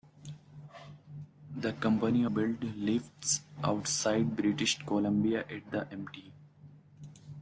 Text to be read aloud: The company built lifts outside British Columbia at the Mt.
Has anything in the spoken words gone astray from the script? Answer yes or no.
no